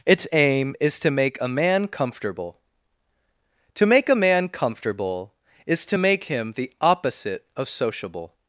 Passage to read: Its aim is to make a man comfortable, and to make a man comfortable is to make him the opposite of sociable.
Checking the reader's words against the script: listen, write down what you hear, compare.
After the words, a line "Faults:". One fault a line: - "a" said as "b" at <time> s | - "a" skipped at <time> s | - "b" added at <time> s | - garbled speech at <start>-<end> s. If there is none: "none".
Its aim is to make a man comfortable, to make a man comfortable is to make him the opposite of sociable.
Faults:
- "and" skipped at 2.6 s